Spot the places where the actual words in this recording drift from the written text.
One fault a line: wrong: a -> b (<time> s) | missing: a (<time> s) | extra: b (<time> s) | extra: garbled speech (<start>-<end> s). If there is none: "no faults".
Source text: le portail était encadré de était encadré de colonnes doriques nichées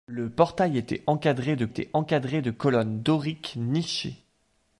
no faults